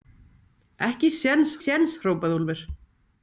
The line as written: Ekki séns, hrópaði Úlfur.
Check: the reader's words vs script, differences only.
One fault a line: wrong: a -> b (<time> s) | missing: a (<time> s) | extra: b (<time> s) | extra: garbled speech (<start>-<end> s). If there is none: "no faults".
extra: séns (1.6 s)